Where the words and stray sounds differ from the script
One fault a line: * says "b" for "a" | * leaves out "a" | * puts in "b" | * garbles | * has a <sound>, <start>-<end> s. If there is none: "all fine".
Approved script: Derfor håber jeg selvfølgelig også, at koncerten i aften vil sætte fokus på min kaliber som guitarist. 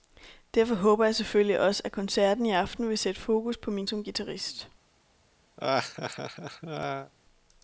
* leaves out "kaliber"
* has a laugh, 5.6-7.1 s